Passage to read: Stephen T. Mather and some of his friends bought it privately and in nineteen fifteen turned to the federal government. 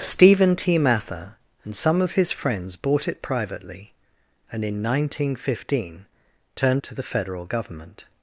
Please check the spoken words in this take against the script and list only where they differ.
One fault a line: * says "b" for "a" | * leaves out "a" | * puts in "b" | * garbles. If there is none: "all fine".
all fine